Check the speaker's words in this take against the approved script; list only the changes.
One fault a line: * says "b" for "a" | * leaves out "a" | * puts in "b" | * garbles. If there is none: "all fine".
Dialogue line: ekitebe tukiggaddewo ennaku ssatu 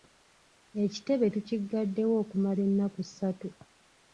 * puts in "okumala"